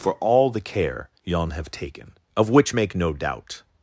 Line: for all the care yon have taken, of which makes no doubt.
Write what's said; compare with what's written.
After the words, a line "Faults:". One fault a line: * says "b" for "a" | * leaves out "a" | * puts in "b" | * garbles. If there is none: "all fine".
for all the care yon have taken, of which make no doubt.
Faults:
* says "make" for "makes"